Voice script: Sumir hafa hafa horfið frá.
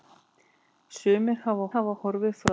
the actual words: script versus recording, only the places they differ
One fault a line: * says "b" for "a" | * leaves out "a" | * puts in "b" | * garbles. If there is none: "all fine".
all fine